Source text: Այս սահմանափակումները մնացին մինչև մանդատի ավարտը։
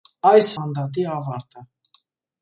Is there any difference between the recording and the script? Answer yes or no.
yes